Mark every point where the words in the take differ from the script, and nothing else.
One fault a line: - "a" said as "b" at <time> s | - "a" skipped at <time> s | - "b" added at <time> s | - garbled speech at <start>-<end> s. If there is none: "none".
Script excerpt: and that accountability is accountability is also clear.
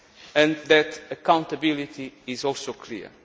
- "accountability is" skipped at 2.4 s